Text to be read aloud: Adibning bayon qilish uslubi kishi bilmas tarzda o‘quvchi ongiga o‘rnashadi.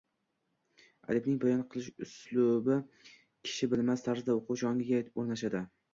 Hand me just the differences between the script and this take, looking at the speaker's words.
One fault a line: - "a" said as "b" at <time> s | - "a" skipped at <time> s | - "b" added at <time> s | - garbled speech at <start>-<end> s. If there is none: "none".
none